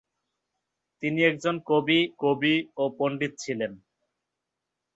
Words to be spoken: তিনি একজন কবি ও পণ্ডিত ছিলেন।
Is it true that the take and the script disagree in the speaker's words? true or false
true